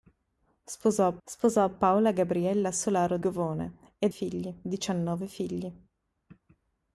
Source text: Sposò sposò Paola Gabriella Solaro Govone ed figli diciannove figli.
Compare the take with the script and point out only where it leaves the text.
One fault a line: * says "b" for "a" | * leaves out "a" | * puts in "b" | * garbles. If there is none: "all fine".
all fine